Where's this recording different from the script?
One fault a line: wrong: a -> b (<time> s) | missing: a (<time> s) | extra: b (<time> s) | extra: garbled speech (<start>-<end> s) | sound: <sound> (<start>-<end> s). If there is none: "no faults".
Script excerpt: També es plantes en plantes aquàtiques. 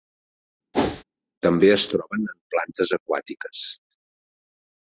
sound: whoosh (0.7-1.0 s)
wrong: plantes -> troben (1.9 s)